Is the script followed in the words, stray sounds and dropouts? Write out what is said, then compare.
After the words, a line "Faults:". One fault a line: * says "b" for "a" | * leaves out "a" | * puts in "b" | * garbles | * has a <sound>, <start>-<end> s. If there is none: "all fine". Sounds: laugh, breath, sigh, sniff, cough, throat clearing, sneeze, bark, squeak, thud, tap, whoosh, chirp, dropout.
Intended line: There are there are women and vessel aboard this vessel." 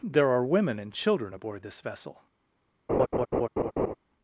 There are women and children aboard this vessel."
Faults:
* leaves out "there are"
* says "children" for "vessel"
* has a laugh, 2.9-3.9 s